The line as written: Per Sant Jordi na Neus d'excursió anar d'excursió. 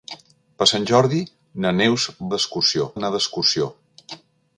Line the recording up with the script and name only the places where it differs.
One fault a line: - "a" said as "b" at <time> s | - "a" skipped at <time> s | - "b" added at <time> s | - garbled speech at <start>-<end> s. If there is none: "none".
none